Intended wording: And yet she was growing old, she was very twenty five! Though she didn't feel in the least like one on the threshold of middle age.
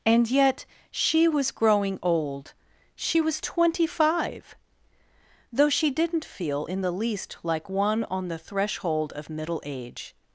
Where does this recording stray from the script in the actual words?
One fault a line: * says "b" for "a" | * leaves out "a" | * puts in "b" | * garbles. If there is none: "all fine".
* leaves out "very"